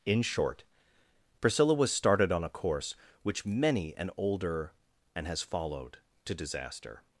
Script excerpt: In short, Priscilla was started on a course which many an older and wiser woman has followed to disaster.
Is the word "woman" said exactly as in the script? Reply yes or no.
no